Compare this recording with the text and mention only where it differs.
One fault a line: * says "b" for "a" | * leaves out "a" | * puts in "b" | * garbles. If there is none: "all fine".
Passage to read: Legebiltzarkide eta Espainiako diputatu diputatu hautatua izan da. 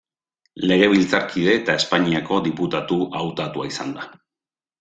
* leaves out "diputatu"